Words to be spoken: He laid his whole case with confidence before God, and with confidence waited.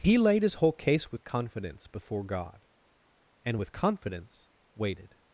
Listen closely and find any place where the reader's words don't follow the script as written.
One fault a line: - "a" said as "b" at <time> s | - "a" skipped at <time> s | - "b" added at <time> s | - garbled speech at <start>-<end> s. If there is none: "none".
none